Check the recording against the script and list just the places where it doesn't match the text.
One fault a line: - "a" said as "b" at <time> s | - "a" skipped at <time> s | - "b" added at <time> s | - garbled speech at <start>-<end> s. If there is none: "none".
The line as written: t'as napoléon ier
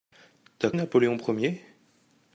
none